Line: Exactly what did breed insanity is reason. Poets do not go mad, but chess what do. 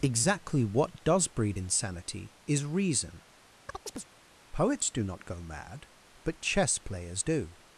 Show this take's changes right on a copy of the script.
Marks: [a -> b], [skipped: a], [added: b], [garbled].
Exactly what [did -> does] breed insanity is reason. Poets do not go mad, but chess [what -> players] do.